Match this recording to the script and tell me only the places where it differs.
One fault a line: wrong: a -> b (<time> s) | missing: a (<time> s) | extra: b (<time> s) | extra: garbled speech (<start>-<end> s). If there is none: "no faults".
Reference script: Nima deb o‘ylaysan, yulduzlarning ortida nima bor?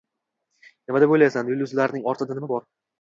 no faults